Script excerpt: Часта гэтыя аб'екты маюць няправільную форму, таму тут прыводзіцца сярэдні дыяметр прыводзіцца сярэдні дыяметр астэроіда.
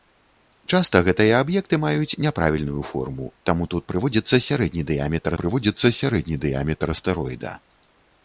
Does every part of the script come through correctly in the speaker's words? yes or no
yes